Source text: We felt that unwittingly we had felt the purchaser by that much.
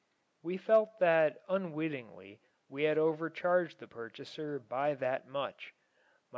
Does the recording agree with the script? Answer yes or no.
no